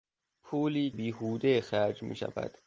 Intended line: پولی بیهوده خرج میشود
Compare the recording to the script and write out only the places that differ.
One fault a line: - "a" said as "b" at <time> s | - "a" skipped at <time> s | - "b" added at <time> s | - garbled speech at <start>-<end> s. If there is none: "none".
none